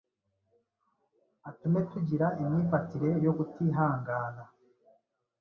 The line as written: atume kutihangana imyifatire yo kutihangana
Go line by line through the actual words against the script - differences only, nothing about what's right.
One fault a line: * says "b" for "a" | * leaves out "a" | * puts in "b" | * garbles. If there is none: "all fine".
* says "tugira" for "kutihangana"